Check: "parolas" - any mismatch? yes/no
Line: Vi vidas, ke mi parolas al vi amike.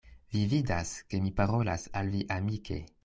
no